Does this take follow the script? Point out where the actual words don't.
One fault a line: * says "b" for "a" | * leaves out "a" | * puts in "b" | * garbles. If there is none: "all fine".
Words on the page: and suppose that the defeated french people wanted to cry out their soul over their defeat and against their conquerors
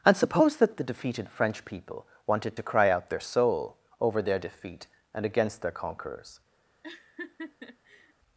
all fine